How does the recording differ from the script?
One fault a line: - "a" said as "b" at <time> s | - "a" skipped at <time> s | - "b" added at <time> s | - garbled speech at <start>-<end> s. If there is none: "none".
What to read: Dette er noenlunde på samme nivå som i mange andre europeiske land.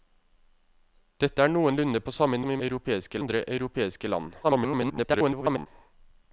- "nivå" skipped at 2.4 s
- "mange" said as "europeiske" at 2.7 s
- garbled speech at 4.4-5.7 s